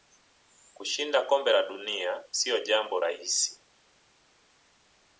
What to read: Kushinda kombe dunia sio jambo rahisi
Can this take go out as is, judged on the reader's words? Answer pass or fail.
fail